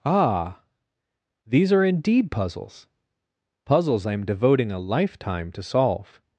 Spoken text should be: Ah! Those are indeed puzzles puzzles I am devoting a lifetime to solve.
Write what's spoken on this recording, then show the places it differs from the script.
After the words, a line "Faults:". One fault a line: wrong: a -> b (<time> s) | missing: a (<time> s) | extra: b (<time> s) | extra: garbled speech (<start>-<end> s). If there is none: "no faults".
Ah! These are indeed puzzles puzzles I am devoting a lifetime to solve.
Faults:
wrong: Those -> These (1.5 s)